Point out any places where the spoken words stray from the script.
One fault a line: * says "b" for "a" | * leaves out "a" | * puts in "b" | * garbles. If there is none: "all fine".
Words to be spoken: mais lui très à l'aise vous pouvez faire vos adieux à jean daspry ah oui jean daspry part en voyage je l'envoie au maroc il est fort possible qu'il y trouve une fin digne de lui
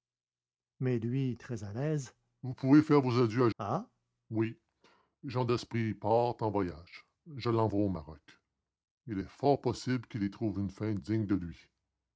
* leaves out "jean daspry"